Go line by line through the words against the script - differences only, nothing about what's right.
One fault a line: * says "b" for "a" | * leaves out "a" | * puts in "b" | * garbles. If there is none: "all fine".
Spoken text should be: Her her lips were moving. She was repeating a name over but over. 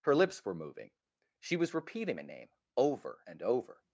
* leaves out "her"
* says "and" for "but"